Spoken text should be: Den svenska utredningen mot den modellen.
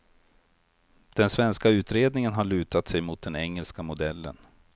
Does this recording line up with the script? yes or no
no